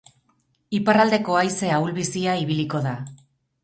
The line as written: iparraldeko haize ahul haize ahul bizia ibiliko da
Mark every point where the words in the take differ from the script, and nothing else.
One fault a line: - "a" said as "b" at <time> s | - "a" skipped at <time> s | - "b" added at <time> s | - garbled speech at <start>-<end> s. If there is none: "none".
- "haize ahul" skipped at 1.9 s